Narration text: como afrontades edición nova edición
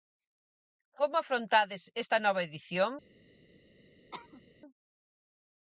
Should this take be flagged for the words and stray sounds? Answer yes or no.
yes